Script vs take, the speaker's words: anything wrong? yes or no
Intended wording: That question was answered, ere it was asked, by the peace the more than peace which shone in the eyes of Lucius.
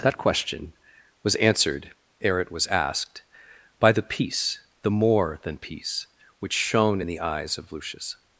no